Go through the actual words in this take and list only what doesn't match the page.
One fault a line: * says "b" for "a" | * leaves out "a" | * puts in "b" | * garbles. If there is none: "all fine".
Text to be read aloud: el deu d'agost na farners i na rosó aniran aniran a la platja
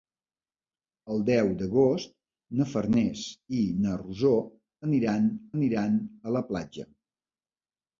all fine